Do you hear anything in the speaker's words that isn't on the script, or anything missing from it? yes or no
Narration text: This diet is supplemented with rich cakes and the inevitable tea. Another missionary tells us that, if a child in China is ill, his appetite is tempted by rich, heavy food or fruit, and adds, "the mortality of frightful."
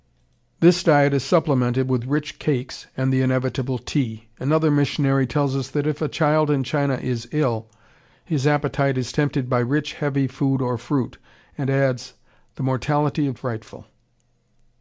no